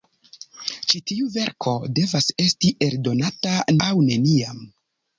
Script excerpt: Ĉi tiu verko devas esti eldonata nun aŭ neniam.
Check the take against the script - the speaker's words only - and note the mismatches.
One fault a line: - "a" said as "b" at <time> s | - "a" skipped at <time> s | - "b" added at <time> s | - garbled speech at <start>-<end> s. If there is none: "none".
- "nun" skipped at 3.5 s